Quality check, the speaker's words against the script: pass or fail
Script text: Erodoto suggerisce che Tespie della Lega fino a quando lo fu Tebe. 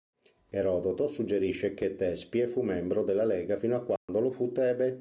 fail